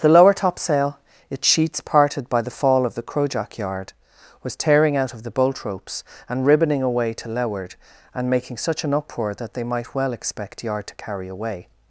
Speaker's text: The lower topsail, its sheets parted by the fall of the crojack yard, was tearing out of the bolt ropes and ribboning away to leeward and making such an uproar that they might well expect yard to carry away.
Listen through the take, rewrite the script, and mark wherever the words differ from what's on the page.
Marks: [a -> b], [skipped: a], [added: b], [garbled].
The lower topsail, its sheets parted by the fall of the crojack yard, was tearing out of the bolt ropes and ribboning away to leeward and making such an uproar that they might well expect yard to carry away.